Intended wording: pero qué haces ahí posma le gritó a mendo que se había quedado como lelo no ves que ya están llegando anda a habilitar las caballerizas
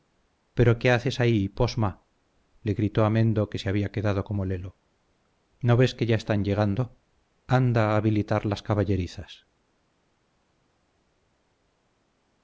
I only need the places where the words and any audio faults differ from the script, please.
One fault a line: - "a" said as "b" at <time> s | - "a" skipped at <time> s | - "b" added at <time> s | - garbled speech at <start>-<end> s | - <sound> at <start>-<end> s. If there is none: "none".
none